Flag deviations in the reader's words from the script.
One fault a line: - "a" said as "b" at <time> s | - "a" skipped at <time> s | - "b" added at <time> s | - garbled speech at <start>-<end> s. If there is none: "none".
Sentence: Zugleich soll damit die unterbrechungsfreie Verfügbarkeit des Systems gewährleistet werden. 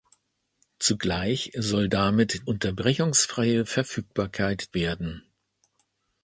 - "die" skipped at 2.5 s
- "des Systems gewährleistet" skipped at 4.7 s